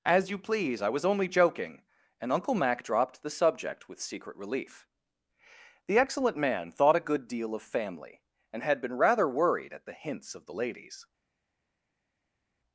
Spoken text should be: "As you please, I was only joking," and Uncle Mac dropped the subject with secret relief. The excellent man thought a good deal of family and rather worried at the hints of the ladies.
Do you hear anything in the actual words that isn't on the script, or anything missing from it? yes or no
yes